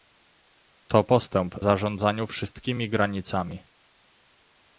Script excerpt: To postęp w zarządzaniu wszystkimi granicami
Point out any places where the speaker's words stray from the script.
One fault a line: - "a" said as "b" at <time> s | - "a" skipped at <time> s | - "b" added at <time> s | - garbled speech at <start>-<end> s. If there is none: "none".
- "w" skipped at 1.6 s